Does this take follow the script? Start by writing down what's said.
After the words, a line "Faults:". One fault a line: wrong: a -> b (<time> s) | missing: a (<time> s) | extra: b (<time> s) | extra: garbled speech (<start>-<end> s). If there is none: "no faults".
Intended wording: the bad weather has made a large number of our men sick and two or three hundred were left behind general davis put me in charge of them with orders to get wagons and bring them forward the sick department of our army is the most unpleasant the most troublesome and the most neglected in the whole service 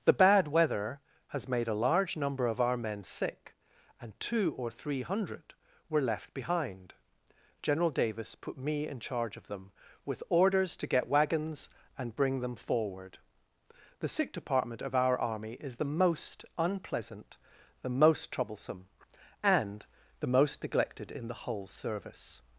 the bad weather has made a large number of our men sick and two or three hundred were left behind general davis put me in charge of them with orders to get wagons and bring them forward the sick department of our army is the most unpleasant the most troublesome and the most neglected in the whole service
Faults:
no faults